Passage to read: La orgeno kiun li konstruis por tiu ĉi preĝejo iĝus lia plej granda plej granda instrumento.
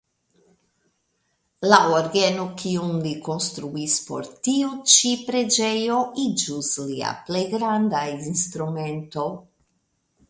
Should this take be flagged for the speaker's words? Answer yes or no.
yes